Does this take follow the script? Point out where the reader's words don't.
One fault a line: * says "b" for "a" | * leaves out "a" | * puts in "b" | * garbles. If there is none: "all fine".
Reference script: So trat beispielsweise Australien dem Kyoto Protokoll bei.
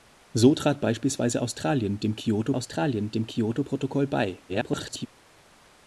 * puts in "Australien dem Kyoto"
* garbles